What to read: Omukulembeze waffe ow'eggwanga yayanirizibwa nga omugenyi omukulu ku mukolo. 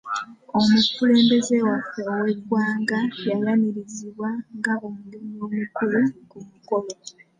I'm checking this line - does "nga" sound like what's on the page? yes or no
yes